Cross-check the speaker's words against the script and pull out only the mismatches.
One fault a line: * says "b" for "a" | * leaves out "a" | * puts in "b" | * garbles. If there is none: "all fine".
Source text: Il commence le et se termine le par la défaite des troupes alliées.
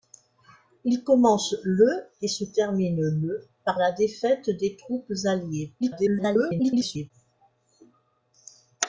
* garbles